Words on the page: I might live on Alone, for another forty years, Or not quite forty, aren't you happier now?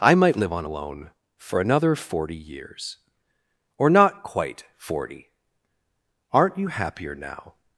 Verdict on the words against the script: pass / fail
pass